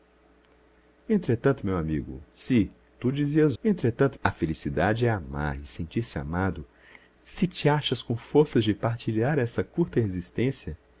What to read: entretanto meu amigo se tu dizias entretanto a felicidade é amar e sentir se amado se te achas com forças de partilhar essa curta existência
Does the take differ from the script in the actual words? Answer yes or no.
no